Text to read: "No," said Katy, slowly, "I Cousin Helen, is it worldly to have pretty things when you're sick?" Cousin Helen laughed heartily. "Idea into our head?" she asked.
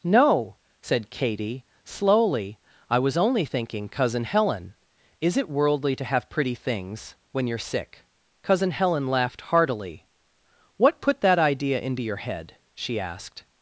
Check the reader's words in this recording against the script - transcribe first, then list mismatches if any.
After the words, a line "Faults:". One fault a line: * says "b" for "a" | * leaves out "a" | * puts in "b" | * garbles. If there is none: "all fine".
"No," said Katy, slowly, "I was only thinking Cousin Helen, is it worldly to have pretty things when you're sick?" Cousin Helen laughed heartily. "What put that idea into your head?" she asked.
Faults:
* puts in "was only thinking"
* puts in "What put that"
* says "your" for "our"